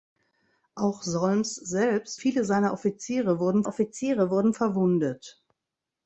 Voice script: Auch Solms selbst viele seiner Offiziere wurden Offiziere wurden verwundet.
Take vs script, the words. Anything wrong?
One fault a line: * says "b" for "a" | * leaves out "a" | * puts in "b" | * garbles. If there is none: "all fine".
all fine